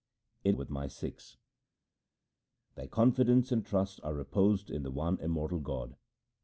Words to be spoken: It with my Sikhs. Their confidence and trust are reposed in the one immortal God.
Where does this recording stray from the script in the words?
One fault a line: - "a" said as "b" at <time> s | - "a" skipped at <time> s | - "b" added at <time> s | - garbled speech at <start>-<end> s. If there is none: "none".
none